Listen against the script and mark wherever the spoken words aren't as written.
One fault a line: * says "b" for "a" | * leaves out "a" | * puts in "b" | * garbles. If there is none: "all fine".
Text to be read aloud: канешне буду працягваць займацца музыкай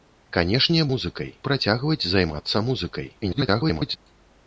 * says "музыкай" for "буду"
* garbles